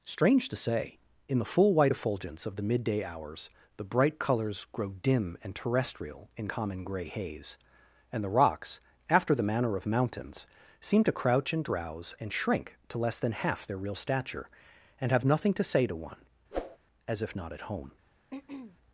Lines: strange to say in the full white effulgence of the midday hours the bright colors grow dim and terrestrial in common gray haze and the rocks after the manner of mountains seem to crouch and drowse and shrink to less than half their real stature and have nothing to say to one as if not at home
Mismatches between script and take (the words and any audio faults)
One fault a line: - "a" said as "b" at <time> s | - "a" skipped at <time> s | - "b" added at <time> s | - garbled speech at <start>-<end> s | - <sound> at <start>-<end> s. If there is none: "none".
- whoosh at 16.5-16.8 s
- throat clearing at 18.3-18.8 s